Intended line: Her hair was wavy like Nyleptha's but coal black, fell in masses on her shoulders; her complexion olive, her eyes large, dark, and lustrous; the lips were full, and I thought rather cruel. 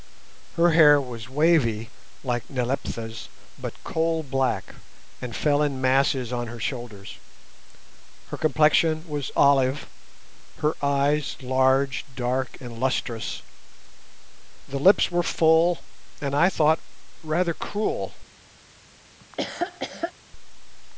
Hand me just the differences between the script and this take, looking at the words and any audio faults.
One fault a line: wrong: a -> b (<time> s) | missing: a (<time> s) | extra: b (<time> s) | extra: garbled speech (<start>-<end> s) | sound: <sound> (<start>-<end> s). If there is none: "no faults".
extra: and (5.2 s)
extra: was (9.1 s)
sound: laugh (19.2-20.1 s)